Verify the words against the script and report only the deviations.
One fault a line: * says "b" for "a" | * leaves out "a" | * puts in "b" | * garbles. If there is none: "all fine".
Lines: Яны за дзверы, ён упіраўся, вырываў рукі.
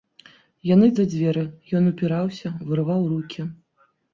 all fine